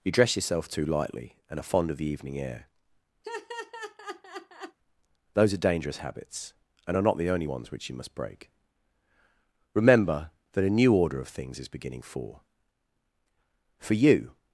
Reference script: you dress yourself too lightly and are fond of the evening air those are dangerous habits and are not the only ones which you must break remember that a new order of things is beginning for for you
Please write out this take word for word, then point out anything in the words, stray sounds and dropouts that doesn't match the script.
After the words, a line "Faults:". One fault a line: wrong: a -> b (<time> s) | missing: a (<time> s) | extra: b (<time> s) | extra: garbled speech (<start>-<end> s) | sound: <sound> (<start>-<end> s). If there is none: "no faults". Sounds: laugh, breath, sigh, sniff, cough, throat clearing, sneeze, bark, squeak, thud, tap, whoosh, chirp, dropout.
you dress yourself too lightly and are fond of the evening air those are dangerous habits and are not the only ones which you must break remember that a new order of things is beginning for for you
Faults:
sound: laugh (3.2-4.8 s)